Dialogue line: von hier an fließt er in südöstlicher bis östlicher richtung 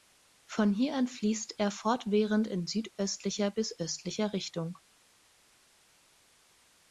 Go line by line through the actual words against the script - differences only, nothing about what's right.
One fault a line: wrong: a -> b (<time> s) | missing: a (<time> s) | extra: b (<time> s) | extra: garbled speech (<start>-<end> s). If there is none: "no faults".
extra: fortwährend (1.7 s)